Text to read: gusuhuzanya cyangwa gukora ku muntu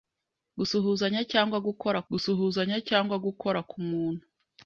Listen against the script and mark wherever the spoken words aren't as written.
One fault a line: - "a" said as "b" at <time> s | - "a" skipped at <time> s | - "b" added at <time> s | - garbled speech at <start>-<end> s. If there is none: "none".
- "gusuhuzanya cyangwa gukora" added at 2.1 s